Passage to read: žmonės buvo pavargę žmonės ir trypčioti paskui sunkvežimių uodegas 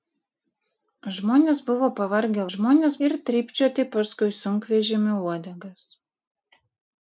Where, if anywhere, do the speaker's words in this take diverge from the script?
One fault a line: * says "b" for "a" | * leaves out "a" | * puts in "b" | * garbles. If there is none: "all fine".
all fine